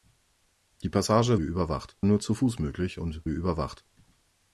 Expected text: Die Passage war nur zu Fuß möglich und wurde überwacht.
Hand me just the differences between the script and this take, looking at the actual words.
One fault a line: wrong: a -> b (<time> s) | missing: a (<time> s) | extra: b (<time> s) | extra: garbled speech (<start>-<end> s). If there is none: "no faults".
wrong: war -> überwacht (1.4 s)
missing: wurde (3.2 s)